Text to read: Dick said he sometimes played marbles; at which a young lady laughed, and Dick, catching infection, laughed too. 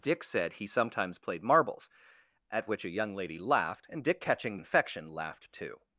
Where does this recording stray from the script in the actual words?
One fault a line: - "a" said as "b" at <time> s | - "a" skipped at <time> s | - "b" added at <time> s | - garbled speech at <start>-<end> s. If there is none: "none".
none